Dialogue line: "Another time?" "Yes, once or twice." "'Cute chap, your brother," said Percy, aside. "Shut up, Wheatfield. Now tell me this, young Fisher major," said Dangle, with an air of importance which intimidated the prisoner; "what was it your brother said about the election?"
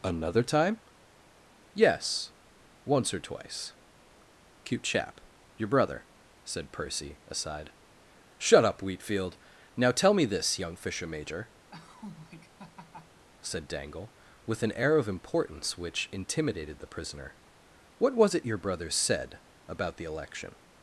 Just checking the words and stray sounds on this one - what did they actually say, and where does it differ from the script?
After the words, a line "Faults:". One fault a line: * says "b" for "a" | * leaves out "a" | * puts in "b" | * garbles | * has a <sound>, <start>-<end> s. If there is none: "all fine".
"Another time?" "Yes, once or twice." "'Cute chap, your brother," said Percy, aside. "Shut up, Wheatfield. Now tell me this, young Fisher major," said Dangle, with an air of importance which intimidated the prisoner; "what was it your brother said about the election?"
Faults:
* has a laugh, 11.7-13.3 s